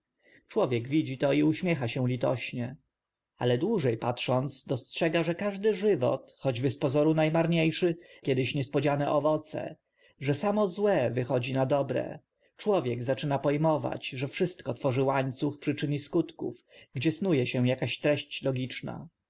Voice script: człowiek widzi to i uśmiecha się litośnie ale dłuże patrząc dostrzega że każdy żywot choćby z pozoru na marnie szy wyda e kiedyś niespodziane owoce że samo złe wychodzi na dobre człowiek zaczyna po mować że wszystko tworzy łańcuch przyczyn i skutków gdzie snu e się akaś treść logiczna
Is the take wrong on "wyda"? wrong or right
wrong